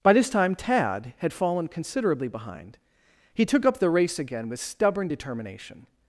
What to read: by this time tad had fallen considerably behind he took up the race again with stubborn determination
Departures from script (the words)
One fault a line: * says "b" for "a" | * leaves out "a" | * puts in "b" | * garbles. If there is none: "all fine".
all fine